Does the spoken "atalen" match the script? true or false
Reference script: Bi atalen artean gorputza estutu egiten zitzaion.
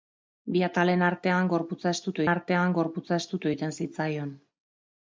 true